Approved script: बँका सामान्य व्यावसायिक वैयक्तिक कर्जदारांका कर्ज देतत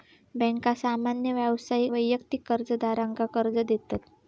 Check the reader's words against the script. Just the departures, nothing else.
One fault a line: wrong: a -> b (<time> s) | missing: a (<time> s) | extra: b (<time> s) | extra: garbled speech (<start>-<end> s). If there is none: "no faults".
no faults